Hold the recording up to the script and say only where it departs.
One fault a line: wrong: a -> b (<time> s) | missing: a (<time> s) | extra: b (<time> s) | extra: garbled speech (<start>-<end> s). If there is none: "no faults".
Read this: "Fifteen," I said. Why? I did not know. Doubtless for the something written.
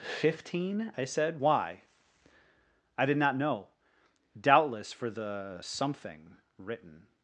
no faults